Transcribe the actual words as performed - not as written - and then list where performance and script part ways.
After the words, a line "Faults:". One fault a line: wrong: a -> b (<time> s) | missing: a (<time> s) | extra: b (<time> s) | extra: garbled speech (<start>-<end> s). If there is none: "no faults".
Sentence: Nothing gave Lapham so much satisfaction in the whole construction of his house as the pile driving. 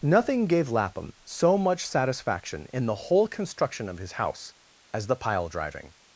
Nothing gave Lapham so much satisfaction in the whole construction of his house as the pile driving.
Faults:
no faults